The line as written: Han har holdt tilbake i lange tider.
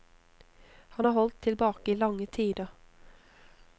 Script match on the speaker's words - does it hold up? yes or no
yes